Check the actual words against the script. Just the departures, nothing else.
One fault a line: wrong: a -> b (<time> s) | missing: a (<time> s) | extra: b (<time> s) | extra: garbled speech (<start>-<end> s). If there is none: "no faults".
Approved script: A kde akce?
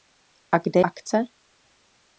no faults